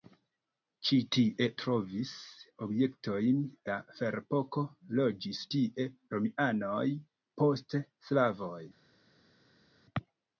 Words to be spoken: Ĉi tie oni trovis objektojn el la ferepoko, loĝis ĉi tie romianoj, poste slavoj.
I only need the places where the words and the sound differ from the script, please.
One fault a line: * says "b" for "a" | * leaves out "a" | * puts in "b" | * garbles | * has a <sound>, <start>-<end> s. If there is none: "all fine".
* leaves out "oni"
* leaves out "el"
* leaves out "ĉi"